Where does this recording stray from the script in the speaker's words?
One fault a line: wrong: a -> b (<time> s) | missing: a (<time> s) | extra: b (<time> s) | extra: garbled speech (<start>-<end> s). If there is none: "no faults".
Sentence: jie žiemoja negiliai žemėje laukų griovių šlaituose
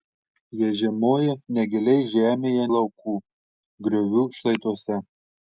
no faults